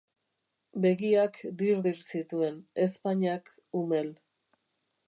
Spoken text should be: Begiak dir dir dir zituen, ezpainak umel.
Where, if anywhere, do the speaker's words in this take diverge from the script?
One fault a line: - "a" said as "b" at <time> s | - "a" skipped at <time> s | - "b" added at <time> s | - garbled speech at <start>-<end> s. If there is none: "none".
- "dir" skipped at 2.0 s